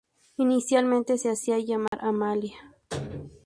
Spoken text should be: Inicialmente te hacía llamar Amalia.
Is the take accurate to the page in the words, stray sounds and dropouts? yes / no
no